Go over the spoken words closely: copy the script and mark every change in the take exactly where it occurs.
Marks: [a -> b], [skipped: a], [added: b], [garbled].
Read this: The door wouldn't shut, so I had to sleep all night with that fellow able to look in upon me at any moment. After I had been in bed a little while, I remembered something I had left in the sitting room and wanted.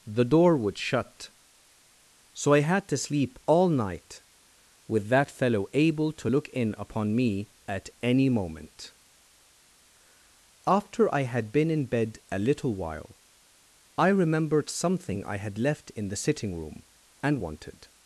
The door [wouldn't -> would] shut, so I had to sleep all night with that fellow able to look in upon me at any moment. After I had been in bed a little while, I remembered something I had left in the sitting room and wanted.